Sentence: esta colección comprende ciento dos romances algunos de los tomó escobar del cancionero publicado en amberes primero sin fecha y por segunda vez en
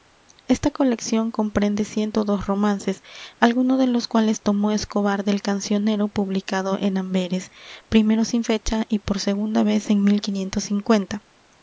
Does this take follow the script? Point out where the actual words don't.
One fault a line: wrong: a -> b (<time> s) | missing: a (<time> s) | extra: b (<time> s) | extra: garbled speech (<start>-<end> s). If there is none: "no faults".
extra: cuales (4.1 s)